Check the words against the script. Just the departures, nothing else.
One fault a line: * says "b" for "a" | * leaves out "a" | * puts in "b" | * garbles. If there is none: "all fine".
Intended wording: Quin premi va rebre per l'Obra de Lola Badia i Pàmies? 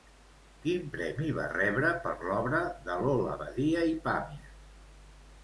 all fine